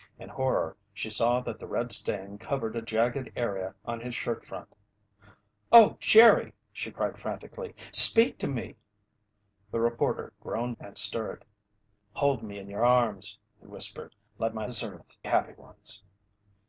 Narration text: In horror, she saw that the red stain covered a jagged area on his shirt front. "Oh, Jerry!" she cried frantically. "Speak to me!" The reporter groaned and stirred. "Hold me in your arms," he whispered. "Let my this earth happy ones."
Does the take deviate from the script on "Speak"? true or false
false